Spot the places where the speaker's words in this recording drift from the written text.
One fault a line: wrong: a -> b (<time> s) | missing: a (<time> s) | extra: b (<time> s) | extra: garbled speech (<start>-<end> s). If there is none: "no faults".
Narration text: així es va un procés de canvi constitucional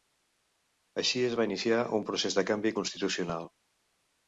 extra: iniciar (1.5 s)